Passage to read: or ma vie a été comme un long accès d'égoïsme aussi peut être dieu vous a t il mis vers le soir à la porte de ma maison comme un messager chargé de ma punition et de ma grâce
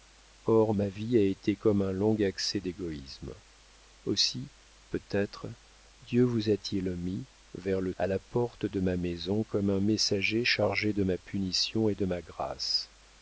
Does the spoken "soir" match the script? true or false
false